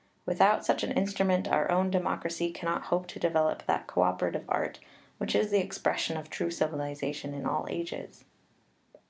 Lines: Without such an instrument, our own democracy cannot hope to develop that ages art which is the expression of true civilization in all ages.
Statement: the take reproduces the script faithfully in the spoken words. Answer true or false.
false